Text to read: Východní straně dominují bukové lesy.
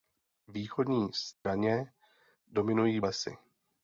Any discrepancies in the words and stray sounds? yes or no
yes